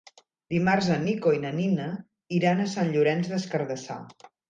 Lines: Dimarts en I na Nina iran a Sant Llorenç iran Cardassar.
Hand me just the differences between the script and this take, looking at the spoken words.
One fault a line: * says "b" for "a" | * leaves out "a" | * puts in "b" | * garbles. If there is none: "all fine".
* puts in "Nico"
* says "des" for "iran"